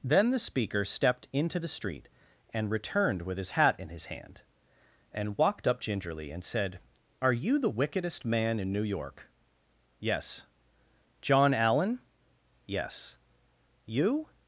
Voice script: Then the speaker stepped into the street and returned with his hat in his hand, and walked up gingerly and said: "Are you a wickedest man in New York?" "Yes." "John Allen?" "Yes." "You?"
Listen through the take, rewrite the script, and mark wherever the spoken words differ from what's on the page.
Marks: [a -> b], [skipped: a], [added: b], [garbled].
Then the speaker stepped into the street and returned with his hat in his hand, and walked up gingerly and said: "Are you [a -> the] wickedest man in New York?" "Yes." "John Allen?" "Yes." "You?"